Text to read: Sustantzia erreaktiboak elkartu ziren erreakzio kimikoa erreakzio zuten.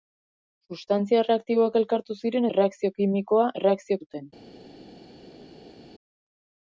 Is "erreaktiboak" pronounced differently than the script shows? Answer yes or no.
no